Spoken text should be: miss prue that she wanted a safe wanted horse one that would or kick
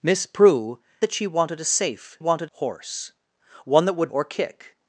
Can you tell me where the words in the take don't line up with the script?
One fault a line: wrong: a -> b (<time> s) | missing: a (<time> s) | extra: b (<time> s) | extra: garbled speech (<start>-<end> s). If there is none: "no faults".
no faults